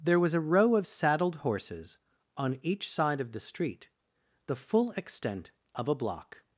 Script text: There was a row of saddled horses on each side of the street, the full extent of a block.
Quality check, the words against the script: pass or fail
pass